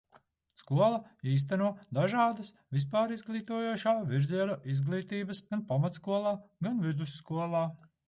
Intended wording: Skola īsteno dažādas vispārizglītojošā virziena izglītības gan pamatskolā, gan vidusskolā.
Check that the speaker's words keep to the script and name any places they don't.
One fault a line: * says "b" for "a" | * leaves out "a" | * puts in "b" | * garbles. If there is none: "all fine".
all fine